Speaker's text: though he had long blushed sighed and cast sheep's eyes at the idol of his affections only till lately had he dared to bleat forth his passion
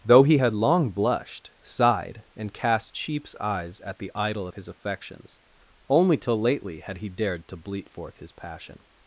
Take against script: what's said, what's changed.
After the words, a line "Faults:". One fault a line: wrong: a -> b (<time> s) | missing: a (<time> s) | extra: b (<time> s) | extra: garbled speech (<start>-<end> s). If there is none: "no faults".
though he had long blushed sighed and cast sheep's eyes at the idol of his affections only till lately had he dared to bleat forth his passion
Faults:
no faults